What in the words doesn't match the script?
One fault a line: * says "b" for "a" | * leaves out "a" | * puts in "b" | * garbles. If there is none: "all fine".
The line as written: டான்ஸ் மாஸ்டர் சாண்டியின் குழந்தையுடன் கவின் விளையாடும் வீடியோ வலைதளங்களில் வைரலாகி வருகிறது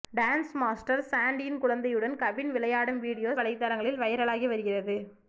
all fine